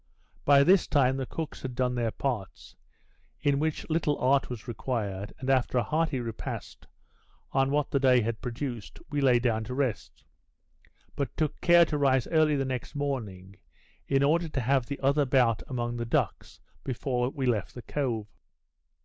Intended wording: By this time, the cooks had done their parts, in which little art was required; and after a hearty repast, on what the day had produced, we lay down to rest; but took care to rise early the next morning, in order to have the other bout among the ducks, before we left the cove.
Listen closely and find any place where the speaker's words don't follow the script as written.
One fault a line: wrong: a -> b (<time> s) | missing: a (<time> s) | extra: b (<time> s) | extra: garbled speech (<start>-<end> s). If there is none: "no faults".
no faults